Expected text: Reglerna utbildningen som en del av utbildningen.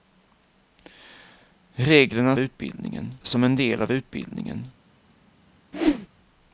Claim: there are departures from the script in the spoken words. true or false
false